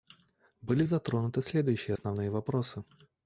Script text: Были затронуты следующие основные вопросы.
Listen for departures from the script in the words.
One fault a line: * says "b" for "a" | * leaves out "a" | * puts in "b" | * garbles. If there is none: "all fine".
all fine